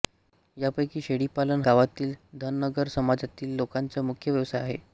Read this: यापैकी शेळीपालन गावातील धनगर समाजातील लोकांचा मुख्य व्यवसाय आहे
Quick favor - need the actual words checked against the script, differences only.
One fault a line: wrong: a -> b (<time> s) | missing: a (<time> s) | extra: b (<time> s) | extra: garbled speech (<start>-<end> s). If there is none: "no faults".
no faults